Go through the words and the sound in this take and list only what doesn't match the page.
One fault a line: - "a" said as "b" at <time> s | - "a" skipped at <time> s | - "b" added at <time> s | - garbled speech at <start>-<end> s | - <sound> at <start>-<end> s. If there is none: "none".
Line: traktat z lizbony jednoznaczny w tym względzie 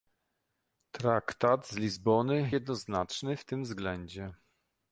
none